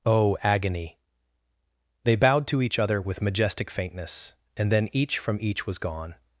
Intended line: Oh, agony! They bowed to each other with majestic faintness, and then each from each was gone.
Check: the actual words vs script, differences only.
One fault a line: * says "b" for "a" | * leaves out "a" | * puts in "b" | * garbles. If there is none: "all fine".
all fine